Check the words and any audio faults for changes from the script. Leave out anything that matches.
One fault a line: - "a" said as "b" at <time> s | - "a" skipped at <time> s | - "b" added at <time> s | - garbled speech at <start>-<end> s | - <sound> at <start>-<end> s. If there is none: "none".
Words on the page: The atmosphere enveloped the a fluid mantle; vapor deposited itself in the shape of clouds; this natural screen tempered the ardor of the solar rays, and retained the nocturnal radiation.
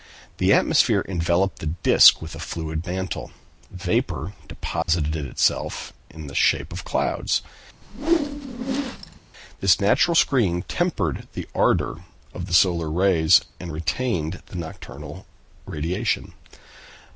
- "disc with" added at 1.7 s
- dropout at 4.8-4.9 s
- whoosh at 7.8-9.2 s